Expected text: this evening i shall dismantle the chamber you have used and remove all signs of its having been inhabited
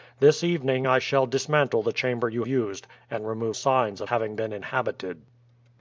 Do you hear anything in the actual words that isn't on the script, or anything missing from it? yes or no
yes